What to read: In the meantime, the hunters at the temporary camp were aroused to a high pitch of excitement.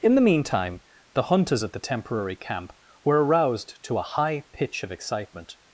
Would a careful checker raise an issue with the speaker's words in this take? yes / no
no